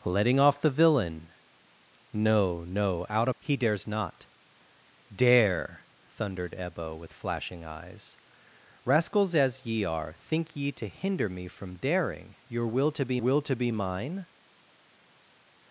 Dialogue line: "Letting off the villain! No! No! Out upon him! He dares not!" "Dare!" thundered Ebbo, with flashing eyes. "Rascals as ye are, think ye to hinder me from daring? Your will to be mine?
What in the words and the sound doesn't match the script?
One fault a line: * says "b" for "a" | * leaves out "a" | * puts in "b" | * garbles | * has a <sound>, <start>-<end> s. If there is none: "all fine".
* leaves out "upon him"
* puts in "will to be"